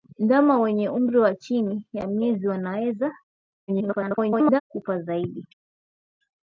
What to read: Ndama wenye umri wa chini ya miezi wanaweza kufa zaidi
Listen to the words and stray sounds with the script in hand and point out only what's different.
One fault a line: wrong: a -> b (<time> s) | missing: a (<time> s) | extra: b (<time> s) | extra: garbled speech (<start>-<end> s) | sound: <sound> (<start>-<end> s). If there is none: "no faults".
extra: garbled speech (3.7-4.6 s)